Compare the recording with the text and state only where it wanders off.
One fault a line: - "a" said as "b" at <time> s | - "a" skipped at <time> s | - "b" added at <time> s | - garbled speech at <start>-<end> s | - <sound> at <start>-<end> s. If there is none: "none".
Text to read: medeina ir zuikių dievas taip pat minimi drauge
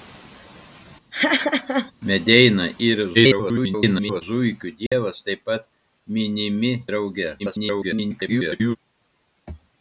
- laugh at 1.1-1.9 s
- garbled speech at 3.1-4.2 s
- dropout at 4.9-4.9 s
- garbled speech at 7.4-8.8 s